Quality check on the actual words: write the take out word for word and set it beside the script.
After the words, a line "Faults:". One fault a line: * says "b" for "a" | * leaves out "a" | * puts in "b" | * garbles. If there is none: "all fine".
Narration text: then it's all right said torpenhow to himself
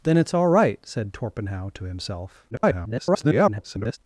then it's all right said torpenhow to himself [garbled]
Faults:
* garbles